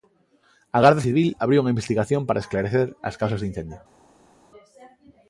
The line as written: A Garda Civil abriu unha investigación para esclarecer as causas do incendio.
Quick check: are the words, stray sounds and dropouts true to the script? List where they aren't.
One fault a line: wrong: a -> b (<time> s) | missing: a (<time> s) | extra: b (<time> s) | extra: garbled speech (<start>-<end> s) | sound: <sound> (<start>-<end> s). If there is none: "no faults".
no faults